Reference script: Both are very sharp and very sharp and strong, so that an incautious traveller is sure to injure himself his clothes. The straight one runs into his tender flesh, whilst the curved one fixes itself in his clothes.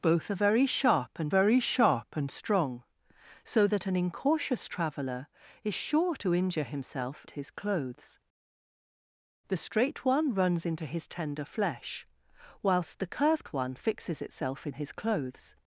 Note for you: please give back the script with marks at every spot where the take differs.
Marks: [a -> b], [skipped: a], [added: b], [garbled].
Both are very sharp and very sharp and strong, so that an incautious traveller is sure to injure himself his clothes. The straight one runs into his tender flesh, whilst the curved one fixes itself in his clothes.